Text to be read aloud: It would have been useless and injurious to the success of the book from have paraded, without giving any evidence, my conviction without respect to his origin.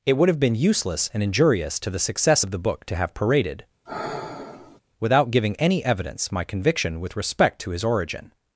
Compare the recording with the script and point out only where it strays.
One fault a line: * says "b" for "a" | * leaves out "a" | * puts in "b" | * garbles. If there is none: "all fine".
* says "to" for "from"
* says "with" for "without"